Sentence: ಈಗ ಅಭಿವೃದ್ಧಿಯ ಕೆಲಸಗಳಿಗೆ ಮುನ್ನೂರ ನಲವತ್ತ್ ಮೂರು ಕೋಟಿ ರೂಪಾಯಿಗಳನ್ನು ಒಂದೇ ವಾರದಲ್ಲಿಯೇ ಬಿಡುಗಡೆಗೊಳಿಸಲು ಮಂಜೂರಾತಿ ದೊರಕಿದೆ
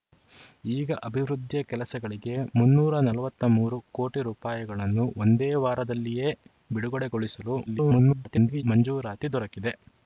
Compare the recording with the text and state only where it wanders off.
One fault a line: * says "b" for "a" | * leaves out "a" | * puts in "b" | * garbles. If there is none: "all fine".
* garbles